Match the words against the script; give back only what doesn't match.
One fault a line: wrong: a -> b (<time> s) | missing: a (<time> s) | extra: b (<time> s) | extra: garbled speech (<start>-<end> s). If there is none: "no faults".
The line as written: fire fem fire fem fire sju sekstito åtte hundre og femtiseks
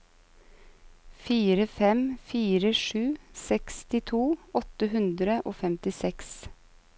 missing: fem fire (2.7 s)